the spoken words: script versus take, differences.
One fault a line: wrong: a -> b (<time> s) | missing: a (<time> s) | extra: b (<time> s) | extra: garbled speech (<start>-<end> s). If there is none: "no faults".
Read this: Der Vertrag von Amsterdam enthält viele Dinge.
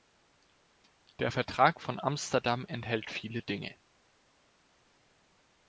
no faults